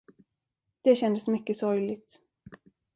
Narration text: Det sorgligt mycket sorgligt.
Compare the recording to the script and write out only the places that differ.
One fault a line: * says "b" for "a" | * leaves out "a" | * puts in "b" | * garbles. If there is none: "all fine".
* says "kändes" for "sorgligt"